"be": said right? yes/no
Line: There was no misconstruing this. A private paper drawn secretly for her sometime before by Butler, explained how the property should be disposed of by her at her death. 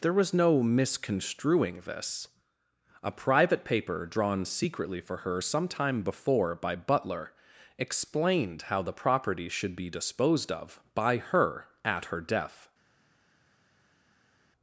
yes